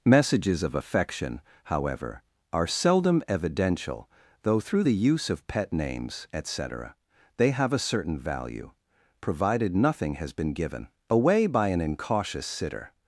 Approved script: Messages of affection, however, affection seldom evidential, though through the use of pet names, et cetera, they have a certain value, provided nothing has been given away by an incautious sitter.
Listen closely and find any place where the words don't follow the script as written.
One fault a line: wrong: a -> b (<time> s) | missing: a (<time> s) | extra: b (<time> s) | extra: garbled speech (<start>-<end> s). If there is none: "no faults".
wrong: affection -> are (2.5 s)